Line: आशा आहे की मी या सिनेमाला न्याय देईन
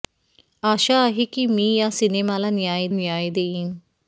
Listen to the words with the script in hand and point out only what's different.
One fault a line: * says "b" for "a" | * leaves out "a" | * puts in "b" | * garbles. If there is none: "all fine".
* puts in "न्याय"